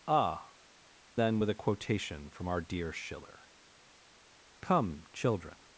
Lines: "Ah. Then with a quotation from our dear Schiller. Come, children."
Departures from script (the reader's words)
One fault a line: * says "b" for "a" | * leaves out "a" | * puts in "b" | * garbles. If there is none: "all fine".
all fine